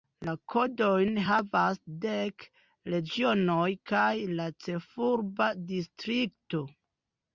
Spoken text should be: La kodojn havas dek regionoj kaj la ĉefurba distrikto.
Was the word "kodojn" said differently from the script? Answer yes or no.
no